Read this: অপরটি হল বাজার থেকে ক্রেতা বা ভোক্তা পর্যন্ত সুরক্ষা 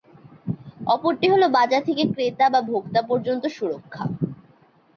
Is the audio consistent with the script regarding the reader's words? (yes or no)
yes